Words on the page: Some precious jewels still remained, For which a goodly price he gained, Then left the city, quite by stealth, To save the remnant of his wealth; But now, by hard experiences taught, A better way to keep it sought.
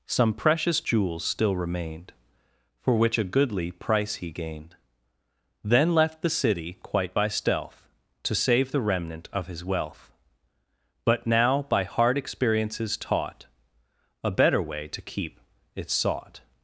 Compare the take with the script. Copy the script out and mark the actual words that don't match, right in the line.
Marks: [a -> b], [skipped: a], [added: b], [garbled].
Some precious jewels still remained, For which a goodly price he gained, Then left the city, quite by stealth, To save the remnant of his wealth; But now, by hard experiences taught, A better way to keep it sought.